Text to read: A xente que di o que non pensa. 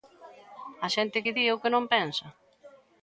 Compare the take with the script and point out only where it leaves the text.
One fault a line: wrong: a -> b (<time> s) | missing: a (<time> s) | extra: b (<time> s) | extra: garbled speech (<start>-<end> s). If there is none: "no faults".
no faults